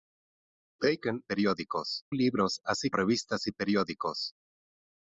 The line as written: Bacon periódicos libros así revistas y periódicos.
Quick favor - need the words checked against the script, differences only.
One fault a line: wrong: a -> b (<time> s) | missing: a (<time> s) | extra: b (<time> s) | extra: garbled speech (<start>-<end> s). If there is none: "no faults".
no faults